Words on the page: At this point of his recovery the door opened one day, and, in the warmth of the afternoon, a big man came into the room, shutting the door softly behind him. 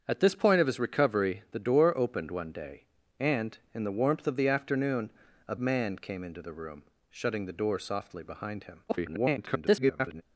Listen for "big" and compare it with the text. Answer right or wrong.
wrong